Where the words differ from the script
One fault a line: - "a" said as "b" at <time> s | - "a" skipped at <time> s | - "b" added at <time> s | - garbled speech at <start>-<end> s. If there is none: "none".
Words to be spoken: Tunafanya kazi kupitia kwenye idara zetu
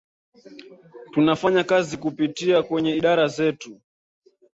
none